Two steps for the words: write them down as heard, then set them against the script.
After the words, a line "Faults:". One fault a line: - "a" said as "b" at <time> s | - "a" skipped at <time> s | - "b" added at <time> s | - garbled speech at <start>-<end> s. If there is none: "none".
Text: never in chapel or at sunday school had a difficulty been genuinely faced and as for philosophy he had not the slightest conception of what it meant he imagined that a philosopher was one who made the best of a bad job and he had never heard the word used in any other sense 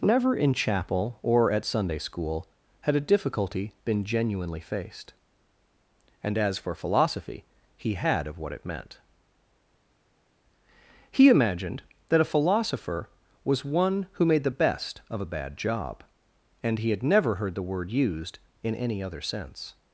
never in chapel or at sunday school had a difficulty been genuinely faced and as for philosophy he had of what it meant he imagined that a philosopher was one who made the best of a bad job and he had never heard the word used in any other sense
Faults:
- "not the slightest conception" skipped at 8.2 s